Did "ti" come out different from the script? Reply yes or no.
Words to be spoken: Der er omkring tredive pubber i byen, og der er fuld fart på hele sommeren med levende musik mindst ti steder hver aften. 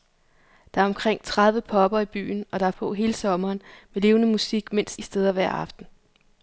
yes